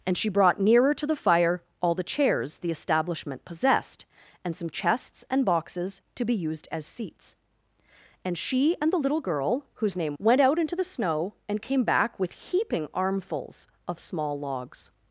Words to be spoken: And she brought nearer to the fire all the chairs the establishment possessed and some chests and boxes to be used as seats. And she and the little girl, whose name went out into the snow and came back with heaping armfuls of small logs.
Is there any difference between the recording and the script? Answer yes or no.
no